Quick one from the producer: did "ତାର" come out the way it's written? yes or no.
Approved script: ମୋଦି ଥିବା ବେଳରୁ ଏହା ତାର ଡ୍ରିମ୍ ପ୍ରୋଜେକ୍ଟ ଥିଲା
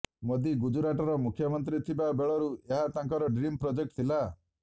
no